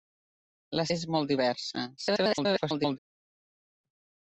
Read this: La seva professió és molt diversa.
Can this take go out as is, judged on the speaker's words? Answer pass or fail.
fail